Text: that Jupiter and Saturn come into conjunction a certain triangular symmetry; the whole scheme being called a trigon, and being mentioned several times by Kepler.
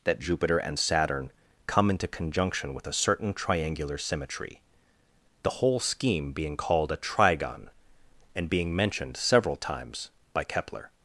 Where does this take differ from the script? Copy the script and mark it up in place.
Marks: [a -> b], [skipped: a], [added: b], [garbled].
that Jupiter and Saturn come into conjunction [added: with] a certain triangular symmetry; the whole scheme being called a trigon, and being mentioned several times by Kepler.